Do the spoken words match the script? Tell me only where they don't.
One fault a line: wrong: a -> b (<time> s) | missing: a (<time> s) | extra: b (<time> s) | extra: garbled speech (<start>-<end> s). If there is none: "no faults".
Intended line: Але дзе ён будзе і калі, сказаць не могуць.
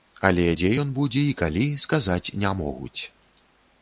no faults